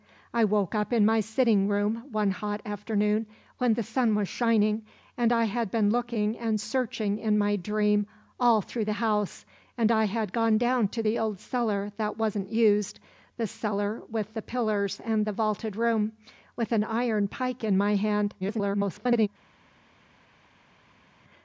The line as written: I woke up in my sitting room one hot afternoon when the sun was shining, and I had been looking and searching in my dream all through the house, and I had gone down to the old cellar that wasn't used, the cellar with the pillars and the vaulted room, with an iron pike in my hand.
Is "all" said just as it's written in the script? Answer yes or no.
yes